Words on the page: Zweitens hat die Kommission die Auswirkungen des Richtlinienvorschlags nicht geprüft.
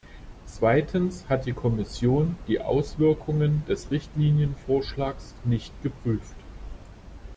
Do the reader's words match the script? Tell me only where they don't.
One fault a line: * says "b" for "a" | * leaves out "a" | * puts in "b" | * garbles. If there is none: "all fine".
all fine